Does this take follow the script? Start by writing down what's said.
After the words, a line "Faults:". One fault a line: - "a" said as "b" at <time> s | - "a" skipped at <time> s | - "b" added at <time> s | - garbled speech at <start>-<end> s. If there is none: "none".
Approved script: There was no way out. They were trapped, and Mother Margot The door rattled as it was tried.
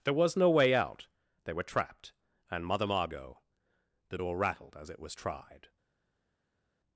There was no way out. They were trapped, and Mother Margot The door rattled as it was tried.
Faults:
none